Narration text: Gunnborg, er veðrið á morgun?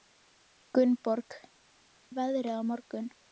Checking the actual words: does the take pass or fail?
pass